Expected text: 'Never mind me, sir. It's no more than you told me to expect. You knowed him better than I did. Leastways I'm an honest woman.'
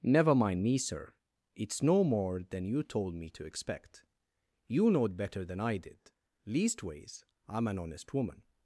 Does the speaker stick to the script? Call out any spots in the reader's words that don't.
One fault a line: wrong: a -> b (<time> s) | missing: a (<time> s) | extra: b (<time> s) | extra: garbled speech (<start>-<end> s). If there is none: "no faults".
missing: him (5.2 s)